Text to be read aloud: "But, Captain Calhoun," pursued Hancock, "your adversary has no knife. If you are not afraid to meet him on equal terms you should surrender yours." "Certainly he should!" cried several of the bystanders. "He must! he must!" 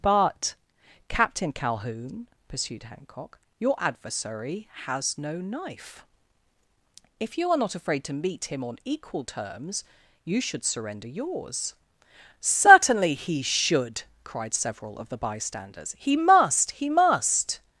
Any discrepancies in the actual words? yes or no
no